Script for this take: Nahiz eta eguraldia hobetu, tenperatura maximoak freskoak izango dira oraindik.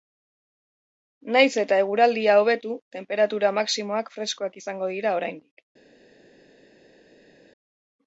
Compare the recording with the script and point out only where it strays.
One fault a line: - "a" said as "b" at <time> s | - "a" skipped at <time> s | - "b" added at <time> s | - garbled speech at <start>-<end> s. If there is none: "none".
none